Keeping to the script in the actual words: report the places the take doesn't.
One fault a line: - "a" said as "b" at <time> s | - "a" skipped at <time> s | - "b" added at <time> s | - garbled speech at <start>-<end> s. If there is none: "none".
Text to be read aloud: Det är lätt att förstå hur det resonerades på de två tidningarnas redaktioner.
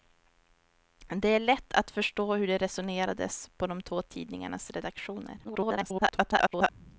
- garbled speech at 5.4-6.7 s